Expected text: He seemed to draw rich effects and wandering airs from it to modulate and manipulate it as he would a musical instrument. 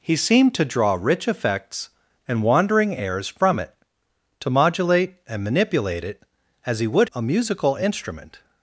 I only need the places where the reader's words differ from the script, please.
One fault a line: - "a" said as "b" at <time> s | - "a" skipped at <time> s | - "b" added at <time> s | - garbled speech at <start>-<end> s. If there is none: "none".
none